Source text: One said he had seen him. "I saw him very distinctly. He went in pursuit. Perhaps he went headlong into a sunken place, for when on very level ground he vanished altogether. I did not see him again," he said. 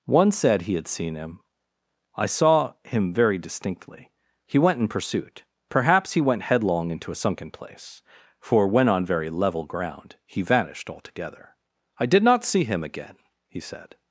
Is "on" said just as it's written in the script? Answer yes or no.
yes